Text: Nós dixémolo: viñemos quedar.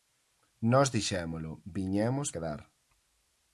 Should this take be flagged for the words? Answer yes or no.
no